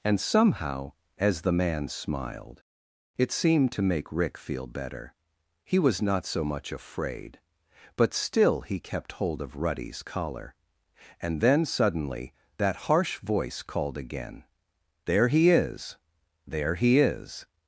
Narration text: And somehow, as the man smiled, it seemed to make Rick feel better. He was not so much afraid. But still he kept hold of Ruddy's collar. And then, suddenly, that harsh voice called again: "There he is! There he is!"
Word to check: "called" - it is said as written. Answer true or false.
true